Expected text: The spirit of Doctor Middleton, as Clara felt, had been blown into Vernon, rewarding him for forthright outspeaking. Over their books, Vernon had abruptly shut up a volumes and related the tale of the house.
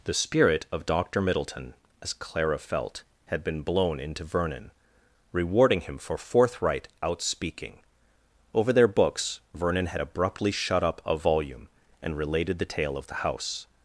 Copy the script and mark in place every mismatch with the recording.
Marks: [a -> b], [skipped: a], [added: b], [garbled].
The spirit of Doctor Middleton, as Clara felt, had been blown into Vernon, rewarding him for forthright outspeaking. Over their books, Vernon had abruptly shut up a [volumes -> volume] and related the tale of the house.